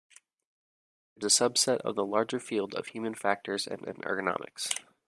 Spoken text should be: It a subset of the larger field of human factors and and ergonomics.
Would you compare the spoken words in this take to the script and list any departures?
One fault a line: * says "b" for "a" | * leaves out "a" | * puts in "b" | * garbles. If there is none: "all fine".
all fine